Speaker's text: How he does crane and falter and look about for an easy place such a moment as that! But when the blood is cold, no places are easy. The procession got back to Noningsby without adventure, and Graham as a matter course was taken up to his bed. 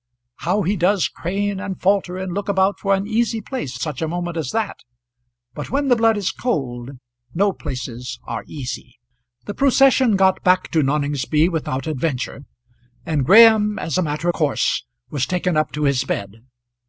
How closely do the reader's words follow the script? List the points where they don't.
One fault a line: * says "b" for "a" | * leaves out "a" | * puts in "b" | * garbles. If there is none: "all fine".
all fine